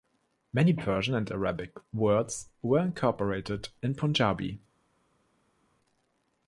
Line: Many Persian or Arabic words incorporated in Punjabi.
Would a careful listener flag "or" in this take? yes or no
yes